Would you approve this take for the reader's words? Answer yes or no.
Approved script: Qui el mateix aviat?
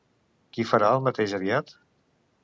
no